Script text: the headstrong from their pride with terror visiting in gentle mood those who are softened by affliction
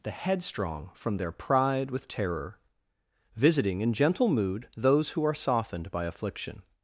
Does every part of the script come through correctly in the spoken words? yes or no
yes